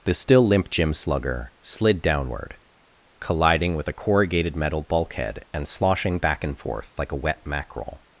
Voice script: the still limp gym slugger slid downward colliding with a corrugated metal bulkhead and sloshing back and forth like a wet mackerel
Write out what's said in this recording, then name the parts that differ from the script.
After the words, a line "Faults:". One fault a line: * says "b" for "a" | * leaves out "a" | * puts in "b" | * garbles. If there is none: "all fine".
the still limp gym slugger slid downward colliding with a corrugated metal bulkhead and sloshing back and forth like a wet mackerel
Faults:
all fine